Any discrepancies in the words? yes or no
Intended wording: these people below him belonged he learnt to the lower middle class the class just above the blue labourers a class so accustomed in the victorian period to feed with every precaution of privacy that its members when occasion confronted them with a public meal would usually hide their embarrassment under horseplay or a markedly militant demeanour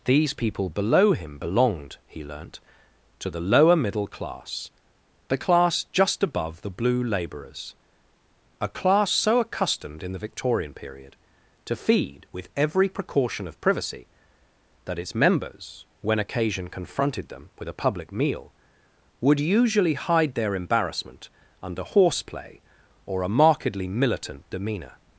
no